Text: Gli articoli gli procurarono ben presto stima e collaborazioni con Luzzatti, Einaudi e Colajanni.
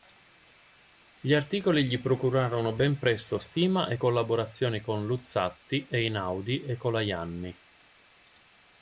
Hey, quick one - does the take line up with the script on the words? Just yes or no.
yes